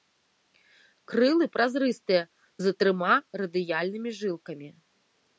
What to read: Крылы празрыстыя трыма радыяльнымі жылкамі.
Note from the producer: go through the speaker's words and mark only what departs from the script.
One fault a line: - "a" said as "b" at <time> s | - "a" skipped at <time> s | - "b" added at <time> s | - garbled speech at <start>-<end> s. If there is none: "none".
- "з" added at 2.7 s